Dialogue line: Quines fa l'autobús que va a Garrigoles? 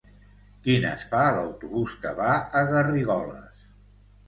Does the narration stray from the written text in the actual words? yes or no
no